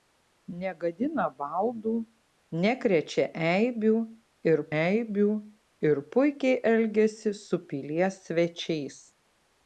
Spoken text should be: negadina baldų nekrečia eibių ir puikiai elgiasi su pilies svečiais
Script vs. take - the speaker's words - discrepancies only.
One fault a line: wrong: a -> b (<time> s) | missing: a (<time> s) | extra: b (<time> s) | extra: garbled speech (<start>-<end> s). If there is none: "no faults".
extra: eibių ir (4.8 s)